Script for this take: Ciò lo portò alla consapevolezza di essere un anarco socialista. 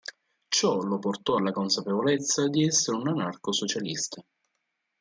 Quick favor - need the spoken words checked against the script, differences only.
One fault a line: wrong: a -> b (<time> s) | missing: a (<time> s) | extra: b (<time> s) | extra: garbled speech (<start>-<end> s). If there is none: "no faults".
no faults